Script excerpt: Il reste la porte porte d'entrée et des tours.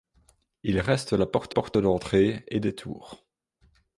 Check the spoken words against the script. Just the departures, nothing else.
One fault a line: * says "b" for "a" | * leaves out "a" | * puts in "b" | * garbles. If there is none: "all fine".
all fine